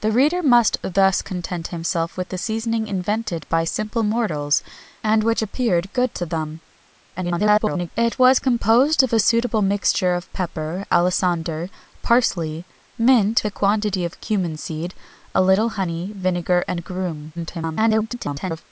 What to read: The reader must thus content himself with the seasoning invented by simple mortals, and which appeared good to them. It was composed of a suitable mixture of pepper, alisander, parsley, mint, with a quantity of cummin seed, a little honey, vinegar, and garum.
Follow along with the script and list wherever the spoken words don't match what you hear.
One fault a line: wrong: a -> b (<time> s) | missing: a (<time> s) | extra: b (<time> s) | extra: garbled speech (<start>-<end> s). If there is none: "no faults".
extra: garbled speech (7.2-7.9 s)
missing: with (13.5 s)
extra: garbled speech (17.3-18.7 s)